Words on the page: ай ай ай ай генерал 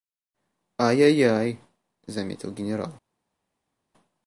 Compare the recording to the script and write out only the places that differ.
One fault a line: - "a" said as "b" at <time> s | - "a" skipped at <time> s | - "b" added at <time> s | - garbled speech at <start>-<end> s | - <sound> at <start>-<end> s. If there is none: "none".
- "ай" said as "заметил" at 2.1 s